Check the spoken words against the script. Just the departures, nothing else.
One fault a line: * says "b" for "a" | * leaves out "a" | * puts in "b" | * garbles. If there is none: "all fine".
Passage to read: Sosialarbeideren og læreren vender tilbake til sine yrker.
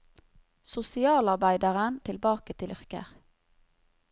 * leaves out "og læreren vender"
* leaves out "sine"